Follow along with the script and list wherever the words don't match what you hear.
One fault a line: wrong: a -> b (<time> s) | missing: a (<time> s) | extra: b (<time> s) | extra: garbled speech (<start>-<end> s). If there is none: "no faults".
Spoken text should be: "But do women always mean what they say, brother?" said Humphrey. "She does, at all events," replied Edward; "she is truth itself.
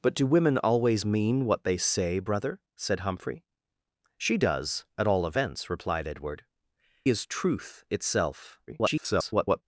missing: she (6.4 s)
extra: garbled speech (8.7-9.6 s)